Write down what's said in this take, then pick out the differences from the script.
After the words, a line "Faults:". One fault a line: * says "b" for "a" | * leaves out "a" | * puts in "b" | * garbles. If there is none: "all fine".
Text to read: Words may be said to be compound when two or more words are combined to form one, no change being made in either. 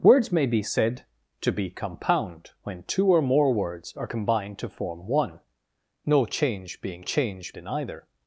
Words may be said to be compound when two or more words are combined to form one, no change being change in either.
Faults:
* says "change" for "made"